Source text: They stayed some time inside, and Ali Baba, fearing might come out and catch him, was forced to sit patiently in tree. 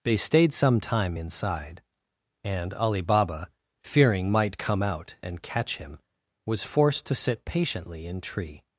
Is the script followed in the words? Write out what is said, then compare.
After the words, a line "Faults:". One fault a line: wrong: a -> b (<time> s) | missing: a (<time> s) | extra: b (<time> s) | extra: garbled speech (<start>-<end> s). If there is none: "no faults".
They stayed some time inside, and Ali Baba, fearing might come out and catch him, was forced to sit patiently in tree.
Faults:
no faults